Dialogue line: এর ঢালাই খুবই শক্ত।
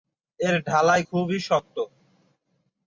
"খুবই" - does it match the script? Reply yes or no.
yes